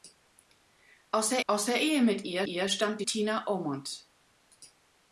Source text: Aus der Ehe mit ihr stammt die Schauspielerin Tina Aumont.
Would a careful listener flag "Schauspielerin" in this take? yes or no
yes